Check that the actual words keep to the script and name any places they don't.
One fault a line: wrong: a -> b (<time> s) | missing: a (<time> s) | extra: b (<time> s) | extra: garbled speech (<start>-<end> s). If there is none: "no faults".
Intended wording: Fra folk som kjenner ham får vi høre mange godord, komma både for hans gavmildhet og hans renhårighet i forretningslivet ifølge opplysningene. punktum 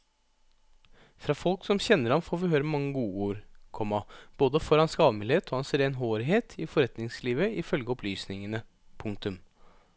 no faults